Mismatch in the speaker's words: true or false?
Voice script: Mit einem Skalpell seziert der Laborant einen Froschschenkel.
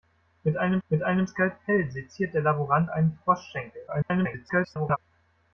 true